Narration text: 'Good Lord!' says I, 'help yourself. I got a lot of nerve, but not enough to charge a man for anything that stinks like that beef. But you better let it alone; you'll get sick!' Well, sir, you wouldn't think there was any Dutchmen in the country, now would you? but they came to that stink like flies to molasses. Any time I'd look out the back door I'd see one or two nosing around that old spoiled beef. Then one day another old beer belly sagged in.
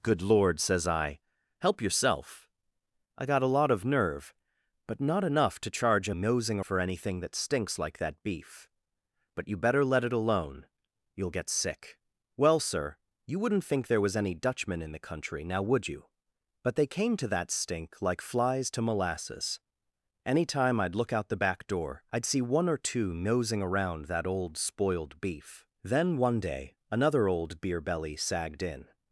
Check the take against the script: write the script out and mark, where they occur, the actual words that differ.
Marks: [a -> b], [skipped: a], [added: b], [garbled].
'Good Lord!' says I, 'help yourself. I got a lot of nerve, but not enough to charge a [man -> nosing] for anything that stinks like that beef. But you better let it alone; you'll get sick!' Well, sir, you wouldn't think there was any Dutchmen in the country, now would you? but they came to that stink like flies to molasses. Any time I'd look out the back door I'd see one or two nosing around that old spoiled beef. Then one day another old beer belly sagged in.